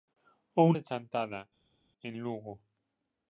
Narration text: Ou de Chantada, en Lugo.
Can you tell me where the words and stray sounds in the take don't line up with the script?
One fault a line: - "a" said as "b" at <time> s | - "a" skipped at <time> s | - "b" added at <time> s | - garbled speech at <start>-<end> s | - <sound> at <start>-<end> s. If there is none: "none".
none